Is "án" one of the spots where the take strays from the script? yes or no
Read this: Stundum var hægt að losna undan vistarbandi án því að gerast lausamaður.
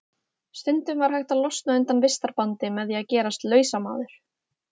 yes